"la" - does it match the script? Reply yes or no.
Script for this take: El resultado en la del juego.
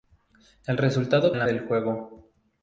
yes